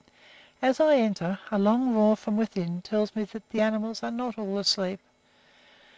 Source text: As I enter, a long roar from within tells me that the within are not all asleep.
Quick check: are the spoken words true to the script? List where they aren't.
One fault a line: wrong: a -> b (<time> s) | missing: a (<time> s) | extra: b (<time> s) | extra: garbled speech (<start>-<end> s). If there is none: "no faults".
wrong: within -> animals (3.6 s)